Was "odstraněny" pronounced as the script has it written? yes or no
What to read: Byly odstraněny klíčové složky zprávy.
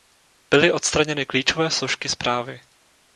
yes